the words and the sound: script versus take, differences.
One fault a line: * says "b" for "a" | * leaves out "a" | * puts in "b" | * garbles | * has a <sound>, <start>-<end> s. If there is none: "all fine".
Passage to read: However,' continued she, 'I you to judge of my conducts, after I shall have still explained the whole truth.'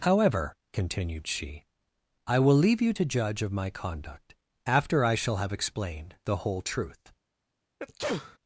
* puts in "will leave"
* says "conduct" for "conducts"
* leaves out "still"
* has a sneeze, 7.8-8.4 s